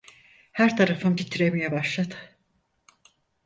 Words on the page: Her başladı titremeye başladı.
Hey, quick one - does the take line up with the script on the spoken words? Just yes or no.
no